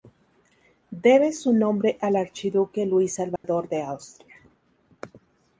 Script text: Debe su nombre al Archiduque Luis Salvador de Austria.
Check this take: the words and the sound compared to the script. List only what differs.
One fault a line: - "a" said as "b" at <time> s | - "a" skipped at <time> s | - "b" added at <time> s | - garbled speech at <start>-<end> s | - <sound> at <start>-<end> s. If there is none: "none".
- dropout at 3.4-3.4 s